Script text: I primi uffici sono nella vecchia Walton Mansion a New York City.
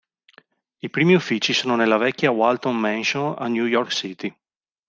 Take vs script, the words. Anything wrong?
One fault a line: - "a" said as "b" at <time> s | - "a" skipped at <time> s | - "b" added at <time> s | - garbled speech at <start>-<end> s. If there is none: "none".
none